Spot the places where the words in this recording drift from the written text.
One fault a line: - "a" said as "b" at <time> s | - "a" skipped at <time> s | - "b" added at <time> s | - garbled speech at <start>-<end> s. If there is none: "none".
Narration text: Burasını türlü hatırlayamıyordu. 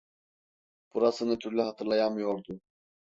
none